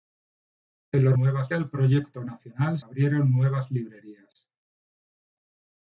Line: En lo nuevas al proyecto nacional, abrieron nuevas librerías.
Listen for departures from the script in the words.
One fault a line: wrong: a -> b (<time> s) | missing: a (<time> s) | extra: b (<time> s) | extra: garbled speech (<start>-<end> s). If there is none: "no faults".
no faults